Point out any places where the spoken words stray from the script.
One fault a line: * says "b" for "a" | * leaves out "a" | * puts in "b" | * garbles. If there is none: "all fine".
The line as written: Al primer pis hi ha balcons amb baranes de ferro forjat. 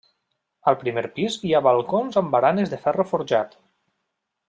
all fine